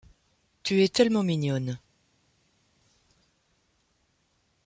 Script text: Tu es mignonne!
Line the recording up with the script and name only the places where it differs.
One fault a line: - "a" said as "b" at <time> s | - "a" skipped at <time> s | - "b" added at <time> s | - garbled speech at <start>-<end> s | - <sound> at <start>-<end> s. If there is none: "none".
- "tellement" added at 0.9 s